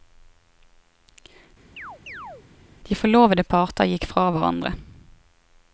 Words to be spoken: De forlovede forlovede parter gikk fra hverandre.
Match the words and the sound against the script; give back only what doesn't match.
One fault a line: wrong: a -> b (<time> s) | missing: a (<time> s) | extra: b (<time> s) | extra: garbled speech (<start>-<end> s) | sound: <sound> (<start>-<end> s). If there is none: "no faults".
sound: chirp (1.8-2.5 s)
missing: forlovede (3.5 s)